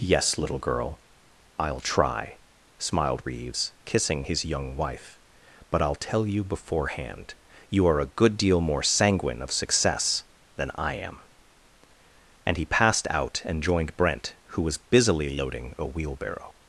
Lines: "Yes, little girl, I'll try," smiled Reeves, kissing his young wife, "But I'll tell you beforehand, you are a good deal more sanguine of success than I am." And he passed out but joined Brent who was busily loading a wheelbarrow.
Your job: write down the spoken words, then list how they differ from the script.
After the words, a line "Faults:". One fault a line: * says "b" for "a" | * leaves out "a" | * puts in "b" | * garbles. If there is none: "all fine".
"Yes, little girl, I'll try," smiled Reeves, kissing his young wife, "But I'll tell you beforehand, you are a good deal more sanguine of success than I am." And he passed out and joined Brent who was busily loading a wheelbarrow.
Faults:
* says "and" for "but"